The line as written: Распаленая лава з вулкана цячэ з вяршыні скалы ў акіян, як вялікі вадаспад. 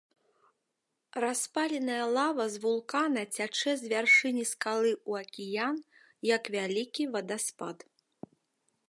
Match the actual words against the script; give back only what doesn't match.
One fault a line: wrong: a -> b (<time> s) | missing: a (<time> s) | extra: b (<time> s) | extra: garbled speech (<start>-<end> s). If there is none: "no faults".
no faults